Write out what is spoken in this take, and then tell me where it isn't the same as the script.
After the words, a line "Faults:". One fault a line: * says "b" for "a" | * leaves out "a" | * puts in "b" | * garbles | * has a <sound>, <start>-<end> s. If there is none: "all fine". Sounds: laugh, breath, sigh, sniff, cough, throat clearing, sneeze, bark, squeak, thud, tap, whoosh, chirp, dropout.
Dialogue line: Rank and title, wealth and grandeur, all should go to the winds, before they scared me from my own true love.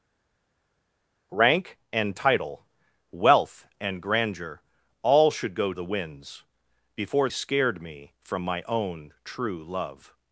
Rank and title, wealth and grandeur, all should go the winds, before scared me from my own true love.
Faults:
* leaves out "to"
* leaves out "they"